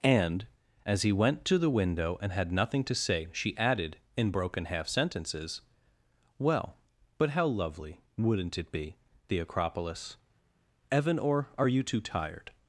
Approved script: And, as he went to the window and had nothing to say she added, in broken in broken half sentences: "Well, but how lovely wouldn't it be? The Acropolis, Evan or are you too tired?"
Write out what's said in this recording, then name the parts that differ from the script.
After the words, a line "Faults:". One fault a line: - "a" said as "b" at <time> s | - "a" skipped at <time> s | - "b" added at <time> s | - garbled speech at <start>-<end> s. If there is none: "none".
And, as he went to the window and had nothing to say she added, in broken half sentences: "Well, but how lovely wouldn't it be? The Acropolis, Evan or are you too tired?"
Faults:
- "in broken" skipped at 4.6 s